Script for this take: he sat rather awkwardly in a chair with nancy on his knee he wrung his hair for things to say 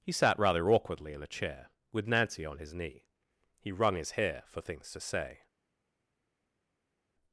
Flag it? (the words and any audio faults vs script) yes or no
no